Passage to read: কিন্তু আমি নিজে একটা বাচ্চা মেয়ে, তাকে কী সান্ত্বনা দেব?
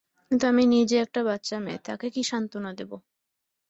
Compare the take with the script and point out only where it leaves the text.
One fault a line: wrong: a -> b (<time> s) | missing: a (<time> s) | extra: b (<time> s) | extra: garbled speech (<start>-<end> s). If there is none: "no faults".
no faults